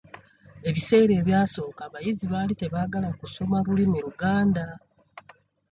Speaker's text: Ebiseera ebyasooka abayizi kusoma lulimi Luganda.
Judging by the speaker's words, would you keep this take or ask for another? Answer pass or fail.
fail